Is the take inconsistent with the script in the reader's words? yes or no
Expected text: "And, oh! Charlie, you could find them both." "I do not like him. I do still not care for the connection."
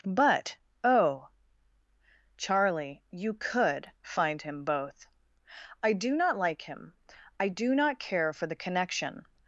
yes